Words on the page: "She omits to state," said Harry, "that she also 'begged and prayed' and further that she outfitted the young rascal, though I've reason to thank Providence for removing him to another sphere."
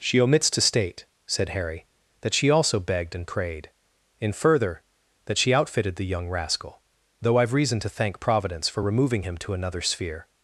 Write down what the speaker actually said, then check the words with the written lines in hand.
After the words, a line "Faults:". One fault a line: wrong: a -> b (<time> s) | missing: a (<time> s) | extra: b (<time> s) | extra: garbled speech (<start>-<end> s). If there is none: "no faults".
"She omits to state," said Harry, "that she also 'begged and prayed' in further that she outfitted the young rascal, though I've reason to thank Providence for removing him to another sphere."
Faults:
wrong: and -> in (4.2 s)